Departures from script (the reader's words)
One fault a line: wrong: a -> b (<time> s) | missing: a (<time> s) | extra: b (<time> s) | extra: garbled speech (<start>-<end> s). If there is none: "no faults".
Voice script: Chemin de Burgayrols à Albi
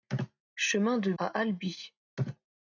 missing: Burgayrols (1.1 s)